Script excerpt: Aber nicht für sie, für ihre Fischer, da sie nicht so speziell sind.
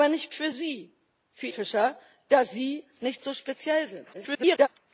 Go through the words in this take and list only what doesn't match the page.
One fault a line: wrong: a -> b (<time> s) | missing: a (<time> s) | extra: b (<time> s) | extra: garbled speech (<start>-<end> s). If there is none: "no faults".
missing: ihre (1.5 s)
extra: garbled speech (4.1-4.7 s)